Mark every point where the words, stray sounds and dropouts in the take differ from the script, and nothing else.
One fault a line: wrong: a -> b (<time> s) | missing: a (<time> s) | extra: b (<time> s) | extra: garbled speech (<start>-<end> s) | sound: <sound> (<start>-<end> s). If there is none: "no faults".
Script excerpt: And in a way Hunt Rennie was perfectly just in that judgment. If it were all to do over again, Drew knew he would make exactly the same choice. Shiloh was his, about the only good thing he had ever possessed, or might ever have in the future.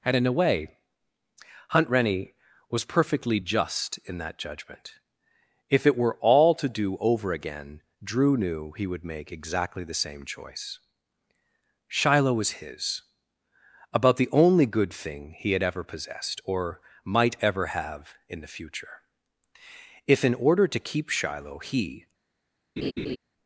extra: If in order to keep Shiloh he (20.1 s)
sound: laugh (22.8-23.2 s)